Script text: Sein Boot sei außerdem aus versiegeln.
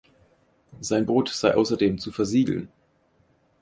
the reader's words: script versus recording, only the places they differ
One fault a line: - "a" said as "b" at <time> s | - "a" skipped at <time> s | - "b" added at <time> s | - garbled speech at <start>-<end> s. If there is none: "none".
- "aus" said as "zu" at 2.0 s